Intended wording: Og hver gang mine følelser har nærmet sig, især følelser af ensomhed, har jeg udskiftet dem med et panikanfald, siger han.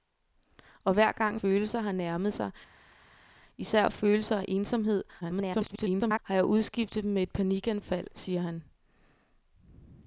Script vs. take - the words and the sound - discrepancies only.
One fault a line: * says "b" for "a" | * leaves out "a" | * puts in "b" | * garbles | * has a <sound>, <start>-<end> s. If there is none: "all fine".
* leaves out "mine"
* garbles